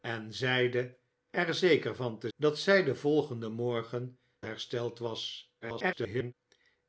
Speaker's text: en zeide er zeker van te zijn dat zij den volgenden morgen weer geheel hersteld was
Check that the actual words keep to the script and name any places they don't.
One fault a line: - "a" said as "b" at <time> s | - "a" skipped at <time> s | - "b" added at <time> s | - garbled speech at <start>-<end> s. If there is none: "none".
- "zijn" skipped at 2.3 s
- "weer geheel" skipped at 4.2 s
- garbled speech at 5.6-6.3 s